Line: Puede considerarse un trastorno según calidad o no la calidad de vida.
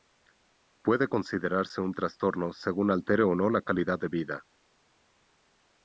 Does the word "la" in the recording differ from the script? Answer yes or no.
no